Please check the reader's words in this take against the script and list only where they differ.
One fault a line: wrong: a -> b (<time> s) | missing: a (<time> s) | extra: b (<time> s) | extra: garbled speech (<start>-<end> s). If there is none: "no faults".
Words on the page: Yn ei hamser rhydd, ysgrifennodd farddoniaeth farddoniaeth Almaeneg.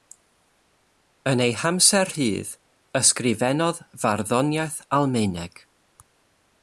missing: farddoniaeth (4.8 s)